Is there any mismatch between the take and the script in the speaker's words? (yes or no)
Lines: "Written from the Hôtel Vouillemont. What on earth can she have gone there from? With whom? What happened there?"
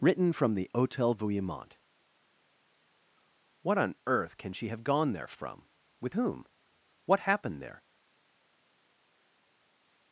no